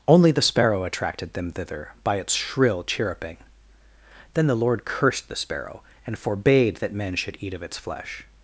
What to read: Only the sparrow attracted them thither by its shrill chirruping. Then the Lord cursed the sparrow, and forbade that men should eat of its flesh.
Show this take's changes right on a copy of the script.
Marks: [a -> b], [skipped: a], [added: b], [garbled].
Only the sparrow attracted them thither by its shrill chirruping. Then the Lord cursed the sparrow, and forbade that men should eat of its flesh.